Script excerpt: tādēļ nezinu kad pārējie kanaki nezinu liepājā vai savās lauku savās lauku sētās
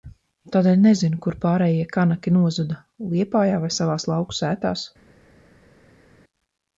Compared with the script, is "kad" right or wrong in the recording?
wrong